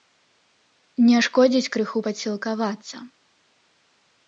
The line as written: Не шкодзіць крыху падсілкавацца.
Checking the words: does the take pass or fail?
pass